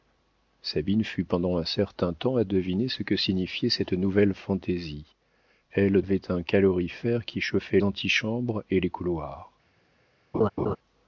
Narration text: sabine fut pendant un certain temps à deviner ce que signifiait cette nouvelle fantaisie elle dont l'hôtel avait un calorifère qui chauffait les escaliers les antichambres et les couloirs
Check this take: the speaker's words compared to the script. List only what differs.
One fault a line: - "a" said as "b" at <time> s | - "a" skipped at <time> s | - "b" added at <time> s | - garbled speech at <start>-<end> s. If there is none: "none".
- "dont l'hôtel" skipped at 6.0 s
- "les escaliers les" skipped at 7.8 s